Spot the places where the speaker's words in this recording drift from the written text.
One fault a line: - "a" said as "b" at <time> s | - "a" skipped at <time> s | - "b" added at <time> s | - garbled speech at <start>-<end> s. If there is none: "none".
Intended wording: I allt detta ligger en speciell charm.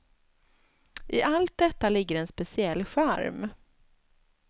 none